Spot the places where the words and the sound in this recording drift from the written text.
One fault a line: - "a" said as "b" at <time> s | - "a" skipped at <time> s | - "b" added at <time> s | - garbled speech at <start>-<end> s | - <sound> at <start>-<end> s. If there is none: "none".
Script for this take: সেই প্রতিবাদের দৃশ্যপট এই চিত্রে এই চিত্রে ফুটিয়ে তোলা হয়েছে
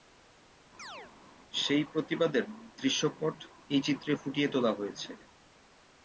- chirp at 0.8-1.1 s
- "এই চিত্রে" skipped at 4.1 s